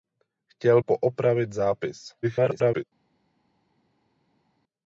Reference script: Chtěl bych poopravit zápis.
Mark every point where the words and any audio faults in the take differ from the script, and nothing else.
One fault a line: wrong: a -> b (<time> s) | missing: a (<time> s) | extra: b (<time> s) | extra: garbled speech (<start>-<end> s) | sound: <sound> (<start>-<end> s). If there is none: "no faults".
missing: bych (0.8 s)
extra: garbled speech (2.2-2.8 s)